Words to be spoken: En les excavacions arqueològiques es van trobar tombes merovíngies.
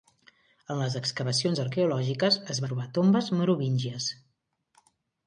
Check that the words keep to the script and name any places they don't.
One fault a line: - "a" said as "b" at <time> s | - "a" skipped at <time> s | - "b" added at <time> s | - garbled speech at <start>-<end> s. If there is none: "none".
- "van" skipped at 2.6 s